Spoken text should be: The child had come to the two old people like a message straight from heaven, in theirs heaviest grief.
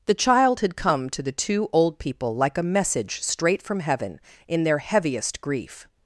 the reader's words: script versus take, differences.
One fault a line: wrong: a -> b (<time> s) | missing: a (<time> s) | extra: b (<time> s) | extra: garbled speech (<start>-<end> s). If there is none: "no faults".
wrong: theirs -> their (4.6 s)